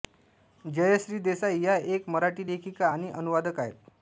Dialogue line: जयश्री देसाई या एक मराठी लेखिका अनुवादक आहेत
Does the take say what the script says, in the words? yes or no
no